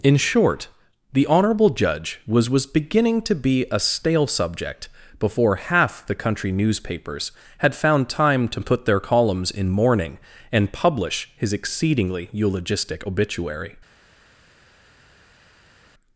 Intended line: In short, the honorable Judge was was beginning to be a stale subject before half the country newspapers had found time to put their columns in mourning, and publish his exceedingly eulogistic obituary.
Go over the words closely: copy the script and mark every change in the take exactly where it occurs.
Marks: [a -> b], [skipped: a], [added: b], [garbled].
In short, the honorable Judge was was beginning to be a stale subject before half the country newspapers had found time to put their columns in mourning, and publish his exceedingly eulogistic obituary.